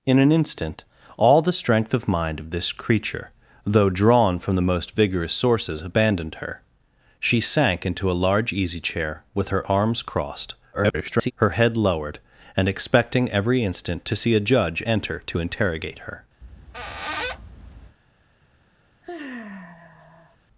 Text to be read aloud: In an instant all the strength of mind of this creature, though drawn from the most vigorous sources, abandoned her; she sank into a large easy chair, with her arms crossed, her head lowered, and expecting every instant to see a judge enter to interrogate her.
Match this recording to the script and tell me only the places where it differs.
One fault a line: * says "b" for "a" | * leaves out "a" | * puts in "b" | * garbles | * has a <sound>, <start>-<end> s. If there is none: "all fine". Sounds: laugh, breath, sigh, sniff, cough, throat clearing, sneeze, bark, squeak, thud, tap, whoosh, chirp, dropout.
* garbles
* has a squeak, 16.4-18.0 s
* has a sigh, 19.0-20.4 s